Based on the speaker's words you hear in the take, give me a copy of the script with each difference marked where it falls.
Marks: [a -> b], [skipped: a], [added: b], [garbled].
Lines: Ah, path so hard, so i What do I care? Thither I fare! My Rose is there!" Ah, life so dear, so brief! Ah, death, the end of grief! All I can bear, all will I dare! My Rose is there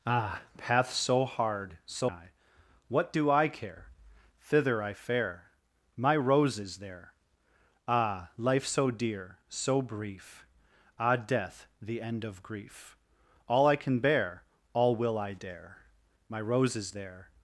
Ah, path so hard, so i What do I care? Thither I fare! My Rose is there!" Ah, life so dear, so brief! Ah, death, the end of grief! All I can bear, all will I dare! My Rose is there